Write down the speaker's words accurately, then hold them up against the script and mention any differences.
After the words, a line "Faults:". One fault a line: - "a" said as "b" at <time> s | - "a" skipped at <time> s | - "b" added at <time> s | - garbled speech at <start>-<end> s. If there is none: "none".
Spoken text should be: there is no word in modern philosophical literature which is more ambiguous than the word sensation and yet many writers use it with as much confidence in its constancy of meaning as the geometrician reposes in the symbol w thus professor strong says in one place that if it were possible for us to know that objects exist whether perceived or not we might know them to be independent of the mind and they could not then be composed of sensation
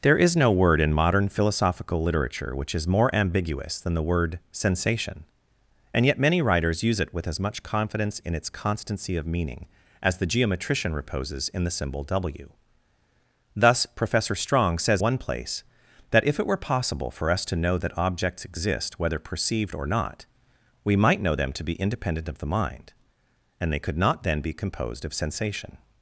there is no word in modern philosophical literature which is more ambiguous than the word sensation and yet many writers use it with as much confidence in its constancy of meaning as the geometrician reposes in the symbol w thus professor strong says one place that if it were possible for us to know that objects exist whether perceived or not we might know them to be independent of the mind and they could not then be composed of sensation
Faults:
- "in" skipped at 15.0 s